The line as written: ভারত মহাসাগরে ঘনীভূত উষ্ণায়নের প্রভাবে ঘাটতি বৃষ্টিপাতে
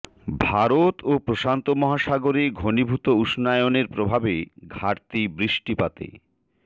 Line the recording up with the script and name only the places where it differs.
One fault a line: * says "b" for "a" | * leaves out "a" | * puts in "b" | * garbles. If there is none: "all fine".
* puts in "ও প্রশান্ত"